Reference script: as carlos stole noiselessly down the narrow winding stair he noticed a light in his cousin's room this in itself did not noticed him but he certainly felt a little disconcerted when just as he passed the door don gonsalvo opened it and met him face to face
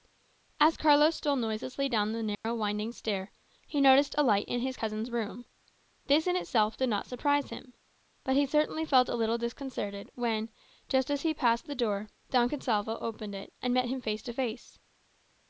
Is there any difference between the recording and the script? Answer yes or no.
yes